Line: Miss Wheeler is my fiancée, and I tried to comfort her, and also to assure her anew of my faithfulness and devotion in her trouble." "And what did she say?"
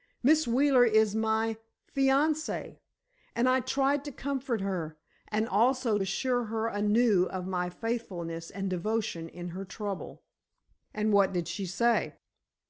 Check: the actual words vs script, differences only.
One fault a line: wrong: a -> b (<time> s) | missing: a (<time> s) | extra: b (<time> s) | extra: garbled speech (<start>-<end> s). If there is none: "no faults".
missing: to (6.0 s)